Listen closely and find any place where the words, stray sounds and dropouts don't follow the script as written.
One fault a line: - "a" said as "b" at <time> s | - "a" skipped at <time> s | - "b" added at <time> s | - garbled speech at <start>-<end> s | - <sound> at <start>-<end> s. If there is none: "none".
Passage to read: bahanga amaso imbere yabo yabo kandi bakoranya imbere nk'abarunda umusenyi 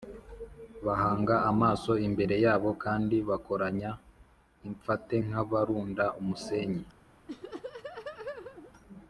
- "yabo" skipped at 2.7 s
- "imbere" said as "imfate" at 4.7 s
- laugh at 7.3-8.7 s